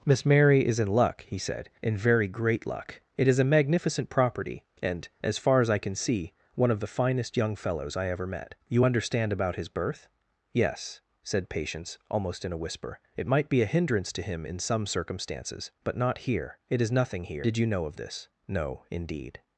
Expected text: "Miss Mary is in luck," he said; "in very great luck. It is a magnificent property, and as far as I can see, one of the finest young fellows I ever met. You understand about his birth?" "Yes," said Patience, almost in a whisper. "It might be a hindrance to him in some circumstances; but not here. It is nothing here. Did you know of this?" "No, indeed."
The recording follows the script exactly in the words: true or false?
true